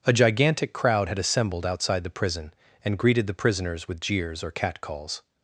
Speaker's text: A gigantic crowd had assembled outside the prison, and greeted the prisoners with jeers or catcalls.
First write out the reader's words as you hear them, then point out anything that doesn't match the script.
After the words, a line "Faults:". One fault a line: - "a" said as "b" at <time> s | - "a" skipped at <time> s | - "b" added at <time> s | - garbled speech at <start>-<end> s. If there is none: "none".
A gigantic crowd had assembled outside the prison, and greeted the prisoners with jeers or catcalls.
Faults:
none